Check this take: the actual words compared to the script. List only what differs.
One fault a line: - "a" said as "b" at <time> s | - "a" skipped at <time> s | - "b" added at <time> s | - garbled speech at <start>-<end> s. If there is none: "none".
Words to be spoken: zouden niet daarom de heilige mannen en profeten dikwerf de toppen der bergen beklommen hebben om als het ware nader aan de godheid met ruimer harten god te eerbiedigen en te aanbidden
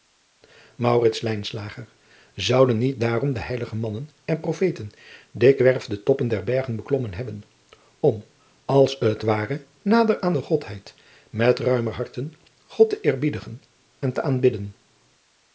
none